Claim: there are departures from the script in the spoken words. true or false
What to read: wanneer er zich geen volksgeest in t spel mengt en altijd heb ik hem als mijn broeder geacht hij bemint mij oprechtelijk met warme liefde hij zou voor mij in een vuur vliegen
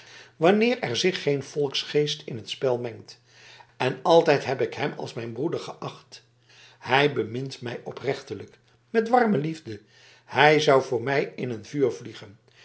false